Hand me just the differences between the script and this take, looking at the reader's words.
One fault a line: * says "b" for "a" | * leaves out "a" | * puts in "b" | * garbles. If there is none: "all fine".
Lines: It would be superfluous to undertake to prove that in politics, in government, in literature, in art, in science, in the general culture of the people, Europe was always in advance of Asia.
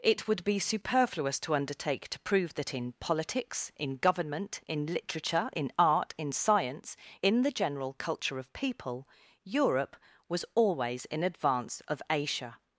* leaves out "the"